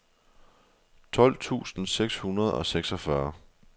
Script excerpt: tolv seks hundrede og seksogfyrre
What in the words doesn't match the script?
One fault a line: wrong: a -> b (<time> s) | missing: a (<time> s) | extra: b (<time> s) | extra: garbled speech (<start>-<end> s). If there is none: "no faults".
extra: tusind (1.4 s)